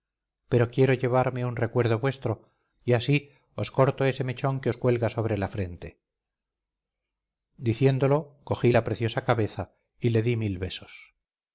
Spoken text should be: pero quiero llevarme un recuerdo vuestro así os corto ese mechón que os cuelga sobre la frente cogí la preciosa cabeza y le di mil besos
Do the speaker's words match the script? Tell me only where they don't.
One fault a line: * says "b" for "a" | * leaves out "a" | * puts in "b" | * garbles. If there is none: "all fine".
* puts in "y"
* puts in "diciéndolo"